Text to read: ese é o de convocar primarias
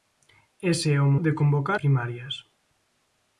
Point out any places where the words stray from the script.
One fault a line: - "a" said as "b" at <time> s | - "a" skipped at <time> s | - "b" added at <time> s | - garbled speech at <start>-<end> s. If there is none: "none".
none